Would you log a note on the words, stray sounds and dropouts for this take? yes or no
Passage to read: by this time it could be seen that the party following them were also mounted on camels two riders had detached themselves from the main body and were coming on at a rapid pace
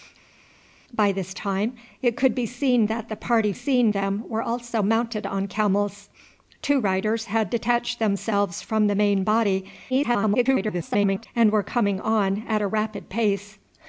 yes